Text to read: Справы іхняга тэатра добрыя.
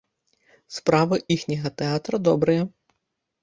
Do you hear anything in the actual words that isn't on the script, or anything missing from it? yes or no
no